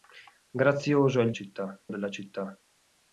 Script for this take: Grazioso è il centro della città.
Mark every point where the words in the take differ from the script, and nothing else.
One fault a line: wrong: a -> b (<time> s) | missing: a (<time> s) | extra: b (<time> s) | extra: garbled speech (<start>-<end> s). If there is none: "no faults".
wrong: centro -> città (1.3 s)